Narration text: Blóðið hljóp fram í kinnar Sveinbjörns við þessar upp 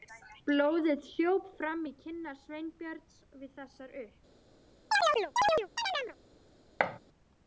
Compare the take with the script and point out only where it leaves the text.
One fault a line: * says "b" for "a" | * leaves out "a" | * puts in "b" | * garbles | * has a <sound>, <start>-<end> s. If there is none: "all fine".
* has a chirp, 4.9-6.2 s
* has a thud, 6.8-7.0 s